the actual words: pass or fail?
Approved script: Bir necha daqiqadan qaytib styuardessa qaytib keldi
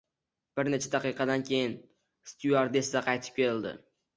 fail